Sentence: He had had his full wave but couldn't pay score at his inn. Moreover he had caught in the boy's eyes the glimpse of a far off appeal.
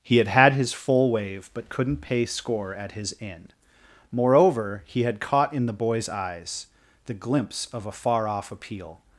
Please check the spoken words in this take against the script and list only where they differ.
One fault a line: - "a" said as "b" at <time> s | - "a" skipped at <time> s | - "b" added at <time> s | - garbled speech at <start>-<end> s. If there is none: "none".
none